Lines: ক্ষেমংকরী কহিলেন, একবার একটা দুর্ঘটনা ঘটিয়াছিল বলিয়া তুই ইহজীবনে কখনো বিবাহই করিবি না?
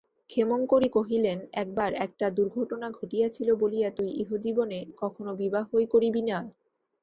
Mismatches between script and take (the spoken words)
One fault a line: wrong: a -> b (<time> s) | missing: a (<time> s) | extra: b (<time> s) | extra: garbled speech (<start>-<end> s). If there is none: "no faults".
no faults